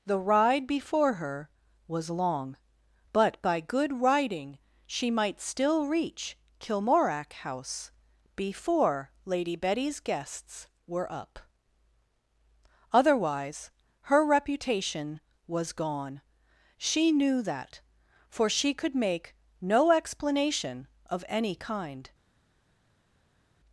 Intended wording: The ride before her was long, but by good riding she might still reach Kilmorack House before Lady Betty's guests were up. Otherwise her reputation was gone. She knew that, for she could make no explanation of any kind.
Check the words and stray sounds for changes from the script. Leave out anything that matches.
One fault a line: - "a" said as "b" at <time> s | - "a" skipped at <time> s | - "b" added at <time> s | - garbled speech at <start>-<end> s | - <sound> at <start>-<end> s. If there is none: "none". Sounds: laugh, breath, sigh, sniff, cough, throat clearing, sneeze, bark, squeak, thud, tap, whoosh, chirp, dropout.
none